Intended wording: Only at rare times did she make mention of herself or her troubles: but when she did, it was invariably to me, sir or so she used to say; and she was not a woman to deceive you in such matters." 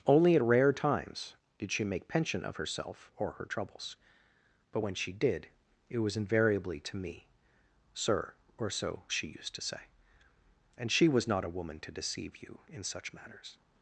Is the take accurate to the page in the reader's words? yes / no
no